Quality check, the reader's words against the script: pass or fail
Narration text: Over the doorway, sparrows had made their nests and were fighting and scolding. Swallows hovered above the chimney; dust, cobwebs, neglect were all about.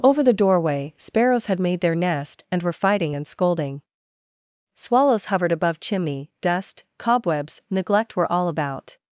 fail